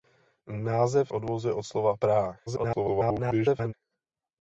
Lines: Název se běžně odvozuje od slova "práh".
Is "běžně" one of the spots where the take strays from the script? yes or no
yes